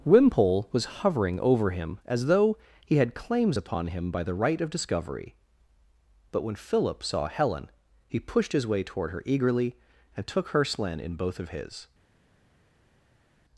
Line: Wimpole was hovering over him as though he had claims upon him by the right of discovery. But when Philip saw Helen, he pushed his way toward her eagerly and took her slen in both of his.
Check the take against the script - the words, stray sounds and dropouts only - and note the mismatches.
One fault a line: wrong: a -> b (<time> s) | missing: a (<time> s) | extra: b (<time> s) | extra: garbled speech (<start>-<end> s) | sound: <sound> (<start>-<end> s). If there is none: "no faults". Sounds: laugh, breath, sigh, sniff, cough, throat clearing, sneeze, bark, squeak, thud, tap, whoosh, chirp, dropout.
no faults